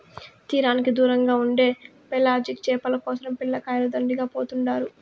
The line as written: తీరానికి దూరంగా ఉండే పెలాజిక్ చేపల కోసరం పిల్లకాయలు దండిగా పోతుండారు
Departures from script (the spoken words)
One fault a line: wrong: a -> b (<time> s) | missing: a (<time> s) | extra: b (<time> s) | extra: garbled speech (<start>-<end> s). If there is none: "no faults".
no faults